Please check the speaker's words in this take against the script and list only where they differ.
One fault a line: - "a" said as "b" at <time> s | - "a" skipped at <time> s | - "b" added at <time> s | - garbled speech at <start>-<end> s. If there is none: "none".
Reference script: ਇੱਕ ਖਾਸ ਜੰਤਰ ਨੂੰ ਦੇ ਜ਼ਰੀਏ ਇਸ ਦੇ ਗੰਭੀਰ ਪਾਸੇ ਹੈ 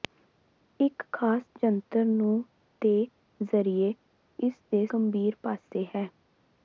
none